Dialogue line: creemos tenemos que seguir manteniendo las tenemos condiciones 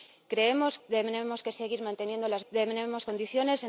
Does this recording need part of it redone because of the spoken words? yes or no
no